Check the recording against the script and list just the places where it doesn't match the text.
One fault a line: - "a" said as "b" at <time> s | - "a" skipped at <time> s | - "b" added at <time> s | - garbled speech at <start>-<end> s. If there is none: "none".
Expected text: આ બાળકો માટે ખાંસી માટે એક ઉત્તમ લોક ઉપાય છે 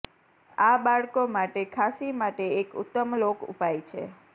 none